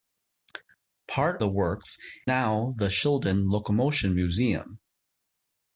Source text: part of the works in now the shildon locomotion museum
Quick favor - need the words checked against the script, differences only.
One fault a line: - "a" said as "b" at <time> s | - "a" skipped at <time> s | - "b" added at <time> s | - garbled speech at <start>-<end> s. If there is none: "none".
- "of" skipped at 1.4 s
- "in" skipped at 2.0 s